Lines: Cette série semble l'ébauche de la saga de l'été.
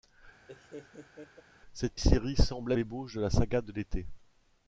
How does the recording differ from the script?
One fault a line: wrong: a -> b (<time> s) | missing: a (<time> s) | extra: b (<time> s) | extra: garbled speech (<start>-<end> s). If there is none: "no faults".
no faults